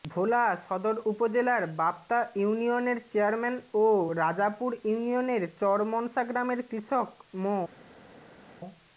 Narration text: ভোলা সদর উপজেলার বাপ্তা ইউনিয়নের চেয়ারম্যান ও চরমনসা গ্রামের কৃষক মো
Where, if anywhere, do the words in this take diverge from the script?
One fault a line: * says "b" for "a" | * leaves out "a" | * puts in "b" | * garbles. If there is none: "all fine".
* puts in "রাজাপুর ইউনিয়নের"